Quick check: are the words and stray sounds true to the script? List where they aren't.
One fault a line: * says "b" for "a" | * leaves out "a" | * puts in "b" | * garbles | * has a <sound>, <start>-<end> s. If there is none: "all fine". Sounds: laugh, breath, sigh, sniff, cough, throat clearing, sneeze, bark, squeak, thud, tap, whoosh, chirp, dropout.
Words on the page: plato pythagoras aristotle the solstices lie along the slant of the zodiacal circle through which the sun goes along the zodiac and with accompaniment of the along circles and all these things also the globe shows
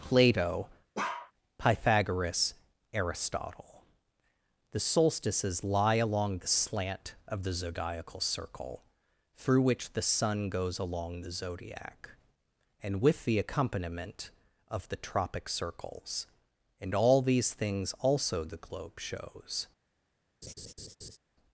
* has a bark, 0.9-1.3 s
* puts in "the"
* says "tropic" for "along"
* has a laugh, 20.4-21.2 s